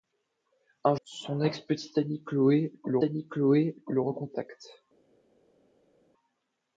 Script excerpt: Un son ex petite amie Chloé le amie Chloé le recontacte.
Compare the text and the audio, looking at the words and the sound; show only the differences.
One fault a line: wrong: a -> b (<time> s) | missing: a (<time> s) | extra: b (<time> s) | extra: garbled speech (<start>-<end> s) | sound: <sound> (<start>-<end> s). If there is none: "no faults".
no faults